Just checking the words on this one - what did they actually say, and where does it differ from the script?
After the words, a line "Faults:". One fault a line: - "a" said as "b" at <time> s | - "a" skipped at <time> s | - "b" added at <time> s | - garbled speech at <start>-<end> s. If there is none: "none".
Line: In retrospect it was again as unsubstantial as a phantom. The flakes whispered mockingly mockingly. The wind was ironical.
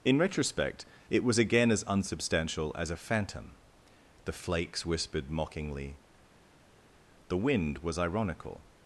In retrospect it was again as unsubstantial as a phantom. The flakes whispered mockingly. The wind was ironical.
Faults:
- "mockingly" skipped at 6.0 s